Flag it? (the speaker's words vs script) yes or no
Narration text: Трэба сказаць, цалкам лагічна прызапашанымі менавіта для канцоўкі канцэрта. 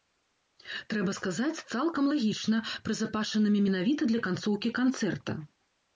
no